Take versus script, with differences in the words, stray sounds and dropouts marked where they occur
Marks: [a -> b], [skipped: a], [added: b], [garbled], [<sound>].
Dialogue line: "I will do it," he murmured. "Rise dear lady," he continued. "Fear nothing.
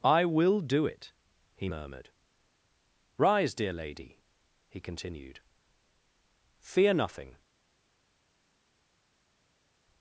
"I will do it," he murmured. "Rise dear lady," he continued. "Fear nothing.